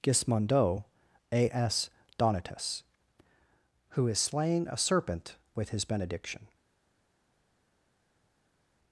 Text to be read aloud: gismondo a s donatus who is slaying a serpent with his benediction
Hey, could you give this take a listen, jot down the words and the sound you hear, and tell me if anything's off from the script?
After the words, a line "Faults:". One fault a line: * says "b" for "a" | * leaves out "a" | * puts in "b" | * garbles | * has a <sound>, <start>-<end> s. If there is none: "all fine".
gismondo a s donatus who is slaying a serpent with his benediction
Faults:
all fine